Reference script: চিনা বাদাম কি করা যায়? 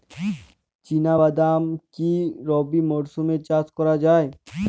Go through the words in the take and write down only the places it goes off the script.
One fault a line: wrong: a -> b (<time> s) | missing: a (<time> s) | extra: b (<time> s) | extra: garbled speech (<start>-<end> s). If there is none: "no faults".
extra: রবি মরশুমে চাষ (2.5 s)